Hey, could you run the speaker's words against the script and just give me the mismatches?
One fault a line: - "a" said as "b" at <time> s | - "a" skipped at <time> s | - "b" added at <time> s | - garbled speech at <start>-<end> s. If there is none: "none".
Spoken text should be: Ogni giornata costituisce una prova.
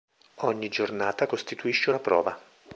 none